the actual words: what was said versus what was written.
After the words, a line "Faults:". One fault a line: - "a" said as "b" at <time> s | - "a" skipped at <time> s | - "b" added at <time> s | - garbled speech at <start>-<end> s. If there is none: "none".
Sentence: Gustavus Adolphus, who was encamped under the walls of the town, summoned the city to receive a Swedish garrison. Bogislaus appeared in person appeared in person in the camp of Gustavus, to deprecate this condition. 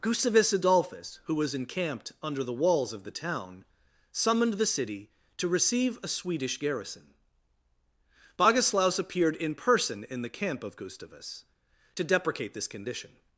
Gustavus Adolphus, who was encamped under the walls of the town, summoned the city to receive a Swedish garrison. Bogislaus appeared in person in the camp of Gustavus, to deprecate this condition.
Faults:
- "appeared in person" skipped at 10.0 s